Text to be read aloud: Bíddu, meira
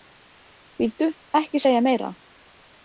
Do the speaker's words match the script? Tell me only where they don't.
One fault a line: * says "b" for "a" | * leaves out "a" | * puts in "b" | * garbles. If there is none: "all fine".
* puts in "ekki segja"